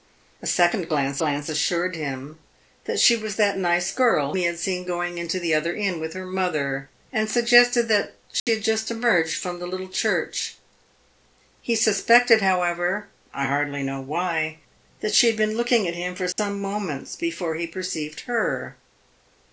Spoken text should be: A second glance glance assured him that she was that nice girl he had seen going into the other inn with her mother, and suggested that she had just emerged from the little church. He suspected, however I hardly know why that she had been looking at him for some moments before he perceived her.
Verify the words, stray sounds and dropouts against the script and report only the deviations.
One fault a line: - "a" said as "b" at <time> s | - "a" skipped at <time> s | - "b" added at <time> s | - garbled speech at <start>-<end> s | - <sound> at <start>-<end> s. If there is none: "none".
- dropout at 8.4-8.5 s
- dropout at 16.3-16.4 s